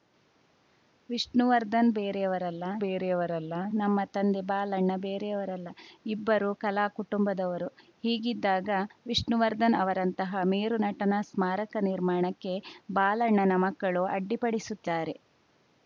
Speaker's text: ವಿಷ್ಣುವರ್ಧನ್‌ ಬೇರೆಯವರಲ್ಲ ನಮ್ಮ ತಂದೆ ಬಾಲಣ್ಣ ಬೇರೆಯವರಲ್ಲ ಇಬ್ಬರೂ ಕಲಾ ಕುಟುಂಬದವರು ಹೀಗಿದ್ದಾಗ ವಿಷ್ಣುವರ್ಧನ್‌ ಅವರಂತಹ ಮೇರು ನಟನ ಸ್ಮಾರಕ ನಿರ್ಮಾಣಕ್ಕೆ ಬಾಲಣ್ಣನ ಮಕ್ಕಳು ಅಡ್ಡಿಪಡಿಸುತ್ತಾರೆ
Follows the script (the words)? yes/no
no